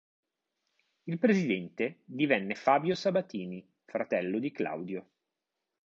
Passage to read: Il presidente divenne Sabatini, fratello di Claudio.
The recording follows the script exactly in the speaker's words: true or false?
false